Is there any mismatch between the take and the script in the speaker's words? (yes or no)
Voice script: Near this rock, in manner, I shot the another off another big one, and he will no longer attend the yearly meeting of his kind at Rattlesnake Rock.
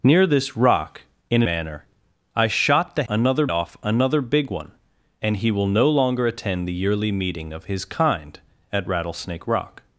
no